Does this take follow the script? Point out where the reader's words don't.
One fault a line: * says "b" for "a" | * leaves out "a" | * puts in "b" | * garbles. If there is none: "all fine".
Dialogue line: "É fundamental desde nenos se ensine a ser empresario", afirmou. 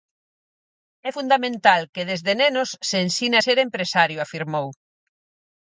* puts in "que"